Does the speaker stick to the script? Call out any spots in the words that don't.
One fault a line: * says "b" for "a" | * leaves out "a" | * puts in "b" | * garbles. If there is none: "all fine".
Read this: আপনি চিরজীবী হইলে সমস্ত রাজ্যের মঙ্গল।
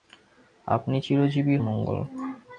* leaves out "হইলে সমস্ত রাজ্যের"